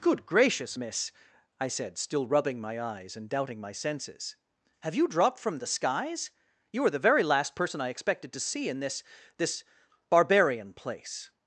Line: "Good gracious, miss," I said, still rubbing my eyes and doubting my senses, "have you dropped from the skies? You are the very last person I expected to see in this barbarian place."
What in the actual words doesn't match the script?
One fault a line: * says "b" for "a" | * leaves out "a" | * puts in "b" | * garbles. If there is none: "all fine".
* puts in "this"